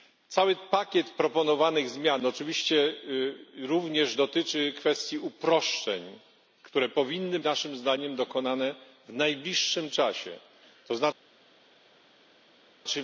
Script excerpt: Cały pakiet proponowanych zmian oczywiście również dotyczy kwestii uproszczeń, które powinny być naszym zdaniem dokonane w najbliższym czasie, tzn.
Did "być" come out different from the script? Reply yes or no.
yes